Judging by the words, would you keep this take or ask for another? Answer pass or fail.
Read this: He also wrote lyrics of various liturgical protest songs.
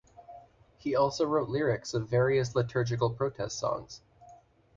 pass